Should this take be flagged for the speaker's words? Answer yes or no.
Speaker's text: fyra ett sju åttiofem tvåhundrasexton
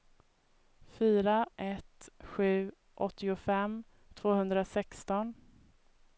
no